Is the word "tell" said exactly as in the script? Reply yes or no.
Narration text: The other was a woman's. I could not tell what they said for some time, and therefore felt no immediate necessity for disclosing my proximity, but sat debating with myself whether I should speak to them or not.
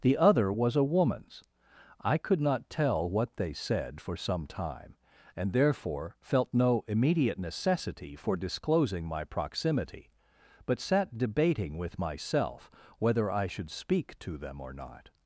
yes